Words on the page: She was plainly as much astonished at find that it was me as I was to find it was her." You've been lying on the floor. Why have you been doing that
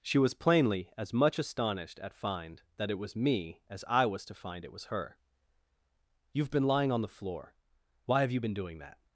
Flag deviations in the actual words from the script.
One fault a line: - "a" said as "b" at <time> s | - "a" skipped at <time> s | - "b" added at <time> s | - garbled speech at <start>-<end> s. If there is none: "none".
none